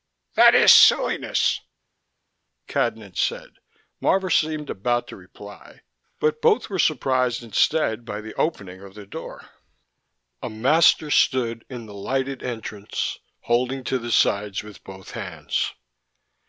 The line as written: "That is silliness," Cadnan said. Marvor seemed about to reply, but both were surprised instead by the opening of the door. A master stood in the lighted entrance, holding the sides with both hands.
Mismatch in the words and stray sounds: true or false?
true